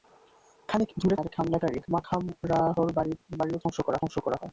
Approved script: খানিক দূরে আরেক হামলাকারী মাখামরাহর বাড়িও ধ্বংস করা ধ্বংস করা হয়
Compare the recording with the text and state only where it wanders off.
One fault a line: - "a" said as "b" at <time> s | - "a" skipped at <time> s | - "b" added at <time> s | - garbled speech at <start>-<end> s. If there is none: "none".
none